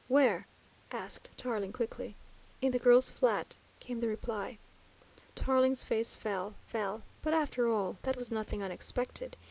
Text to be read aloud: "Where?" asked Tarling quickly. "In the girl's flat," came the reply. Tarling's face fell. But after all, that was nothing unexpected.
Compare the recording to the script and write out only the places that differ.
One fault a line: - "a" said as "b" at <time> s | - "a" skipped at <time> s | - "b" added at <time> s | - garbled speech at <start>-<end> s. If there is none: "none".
- "fell" added at 6.6 s